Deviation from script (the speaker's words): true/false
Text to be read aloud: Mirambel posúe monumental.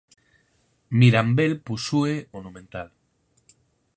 false